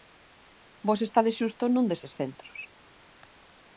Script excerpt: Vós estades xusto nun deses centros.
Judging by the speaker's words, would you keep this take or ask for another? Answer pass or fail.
pass